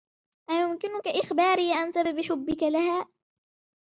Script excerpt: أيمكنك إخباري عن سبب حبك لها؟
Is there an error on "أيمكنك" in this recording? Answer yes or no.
no